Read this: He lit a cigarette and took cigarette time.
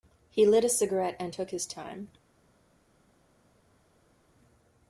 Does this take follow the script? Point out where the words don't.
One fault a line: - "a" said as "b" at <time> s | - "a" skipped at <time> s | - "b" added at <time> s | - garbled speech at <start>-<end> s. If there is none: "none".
- "cigarette" said as "his" at 1.5 s